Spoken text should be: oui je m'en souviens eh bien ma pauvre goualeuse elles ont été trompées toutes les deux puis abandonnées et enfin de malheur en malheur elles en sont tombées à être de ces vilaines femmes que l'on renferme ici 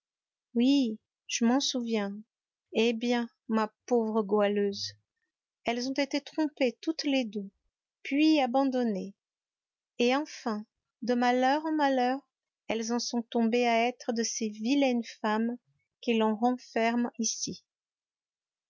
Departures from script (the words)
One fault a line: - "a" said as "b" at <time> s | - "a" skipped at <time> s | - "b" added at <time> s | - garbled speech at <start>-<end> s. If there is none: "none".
none